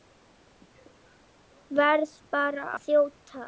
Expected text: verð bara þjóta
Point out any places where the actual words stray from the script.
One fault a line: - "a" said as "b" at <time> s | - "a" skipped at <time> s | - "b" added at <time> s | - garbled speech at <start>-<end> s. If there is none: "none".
none